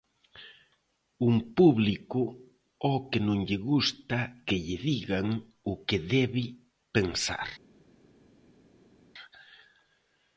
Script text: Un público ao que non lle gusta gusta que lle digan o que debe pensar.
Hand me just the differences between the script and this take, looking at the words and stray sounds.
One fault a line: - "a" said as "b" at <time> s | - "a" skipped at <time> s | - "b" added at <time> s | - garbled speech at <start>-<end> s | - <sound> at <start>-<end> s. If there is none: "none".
- "gusta" skipped at 4.2 s